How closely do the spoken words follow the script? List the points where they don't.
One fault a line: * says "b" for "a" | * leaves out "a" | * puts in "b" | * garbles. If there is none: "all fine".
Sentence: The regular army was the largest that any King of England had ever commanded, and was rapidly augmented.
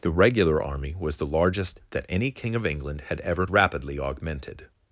* leaves out "commanded and was"